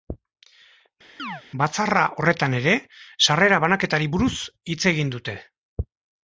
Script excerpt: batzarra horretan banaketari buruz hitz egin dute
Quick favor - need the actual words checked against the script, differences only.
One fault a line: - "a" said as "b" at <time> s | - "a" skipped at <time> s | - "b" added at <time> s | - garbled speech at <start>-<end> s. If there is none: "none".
- "ere sarrera" added at 2.6 s